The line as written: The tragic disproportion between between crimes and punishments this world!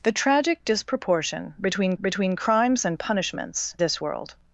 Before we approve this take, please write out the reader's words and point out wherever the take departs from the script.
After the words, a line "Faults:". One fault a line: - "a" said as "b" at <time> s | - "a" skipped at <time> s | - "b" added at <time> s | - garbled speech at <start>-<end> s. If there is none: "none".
The tragic disproportion between between crimes and punishments this world!
Faults:
none